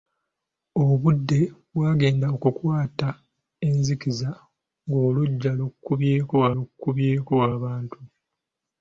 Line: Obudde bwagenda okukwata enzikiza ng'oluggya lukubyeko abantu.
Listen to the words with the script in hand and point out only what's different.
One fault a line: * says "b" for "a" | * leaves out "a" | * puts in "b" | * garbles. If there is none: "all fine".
* puts in "lukubyeko"